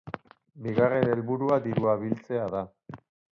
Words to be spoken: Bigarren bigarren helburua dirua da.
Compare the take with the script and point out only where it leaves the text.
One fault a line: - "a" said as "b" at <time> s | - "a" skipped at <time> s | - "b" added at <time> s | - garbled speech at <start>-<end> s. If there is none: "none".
- "bigarren" skipped at 1.1 s
- "biltzea" added at 2.0 s